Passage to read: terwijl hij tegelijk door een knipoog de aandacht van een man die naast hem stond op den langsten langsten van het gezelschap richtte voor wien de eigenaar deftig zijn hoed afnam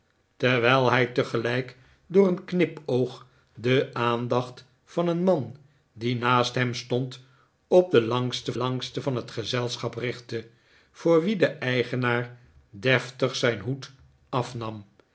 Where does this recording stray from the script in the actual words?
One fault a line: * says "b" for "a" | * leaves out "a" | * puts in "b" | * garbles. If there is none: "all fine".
all fine